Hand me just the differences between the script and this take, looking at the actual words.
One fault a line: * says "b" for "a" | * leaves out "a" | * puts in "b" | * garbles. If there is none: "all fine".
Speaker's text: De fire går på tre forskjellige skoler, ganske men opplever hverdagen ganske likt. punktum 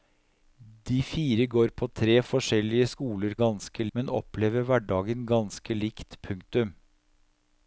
all fine